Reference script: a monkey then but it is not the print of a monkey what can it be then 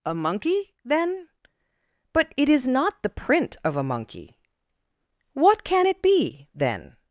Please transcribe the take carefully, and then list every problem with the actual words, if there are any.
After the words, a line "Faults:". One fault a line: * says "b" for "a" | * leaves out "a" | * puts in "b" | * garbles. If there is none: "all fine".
a monkey then but it is not the print of a monkey what can it be then
Faults:
all fine